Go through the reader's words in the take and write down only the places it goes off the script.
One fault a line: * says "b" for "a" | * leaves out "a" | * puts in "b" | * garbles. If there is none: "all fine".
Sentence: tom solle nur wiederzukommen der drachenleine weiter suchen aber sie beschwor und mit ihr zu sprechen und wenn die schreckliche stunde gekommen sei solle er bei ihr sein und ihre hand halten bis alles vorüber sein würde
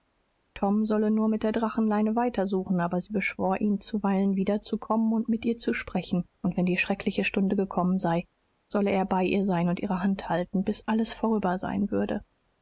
* says "mit" for "wiederzukommen"
* puts in "ihn zuweilen wiederzukommen"